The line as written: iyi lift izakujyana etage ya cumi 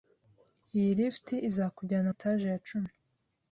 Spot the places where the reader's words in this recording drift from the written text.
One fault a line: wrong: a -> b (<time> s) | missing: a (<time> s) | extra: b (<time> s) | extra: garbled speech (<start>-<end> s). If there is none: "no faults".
no faults